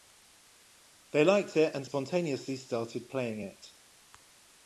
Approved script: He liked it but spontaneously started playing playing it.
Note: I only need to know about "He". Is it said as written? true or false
false